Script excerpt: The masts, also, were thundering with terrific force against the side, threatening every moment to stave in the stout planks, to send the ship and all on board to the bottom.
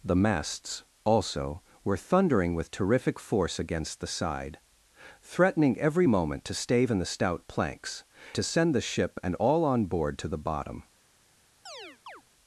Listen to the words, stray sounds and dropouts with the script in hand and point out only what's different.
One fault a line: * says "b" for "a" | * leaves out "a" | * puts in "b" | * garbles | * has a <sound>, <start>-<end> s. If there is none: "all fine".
* has a chirp, 11.7-12.2 s